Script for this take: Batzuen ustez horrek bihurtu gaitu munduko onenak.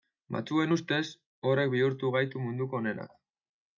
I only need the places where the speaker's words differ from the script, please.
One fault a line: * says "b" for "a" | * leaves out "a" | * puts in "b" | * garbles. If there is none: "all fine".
all fine